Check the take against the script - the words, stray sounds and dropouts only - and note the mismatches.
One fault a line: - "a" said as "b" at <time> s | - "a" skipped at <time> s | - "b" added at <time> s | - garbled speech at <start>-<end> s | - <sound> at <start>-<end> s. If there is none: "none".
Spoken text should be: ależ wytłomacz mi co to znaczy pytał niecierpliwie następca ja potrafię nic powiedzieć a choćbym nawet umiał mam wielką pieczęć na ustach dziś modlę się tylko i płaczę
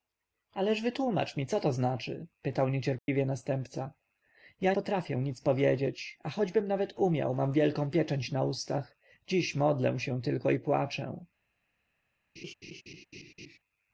- dropout at 3.0-3.1 s
- laugh at 12.4-13.6 s